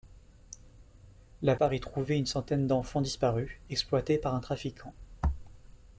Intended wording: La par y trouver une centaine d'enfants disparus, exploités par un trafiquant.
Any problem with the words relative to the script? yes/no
no